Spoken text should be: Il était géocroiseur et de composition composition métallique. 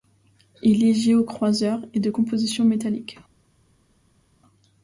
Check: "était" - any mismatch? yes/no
yes